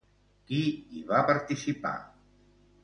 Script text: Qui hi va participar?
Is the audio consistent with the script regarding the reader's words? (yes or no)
yes